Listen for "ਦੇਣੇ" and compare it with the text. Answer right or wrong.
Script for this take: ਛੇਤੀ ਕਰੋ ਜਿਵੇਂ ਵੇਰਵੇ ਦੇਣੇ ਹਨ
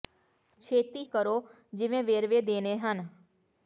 right